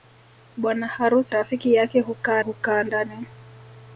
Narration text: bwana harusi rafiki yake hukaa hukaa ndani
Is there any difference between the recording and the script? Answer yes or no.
no